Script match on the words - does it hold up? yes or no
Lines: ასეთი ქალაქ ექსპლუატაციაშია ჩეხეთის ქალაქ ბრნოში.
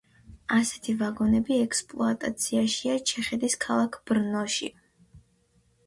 no